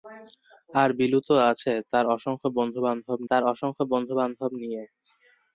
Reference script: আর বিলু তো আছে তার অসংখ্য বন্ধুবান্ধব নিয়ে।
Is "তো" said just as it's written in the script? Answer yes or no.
yes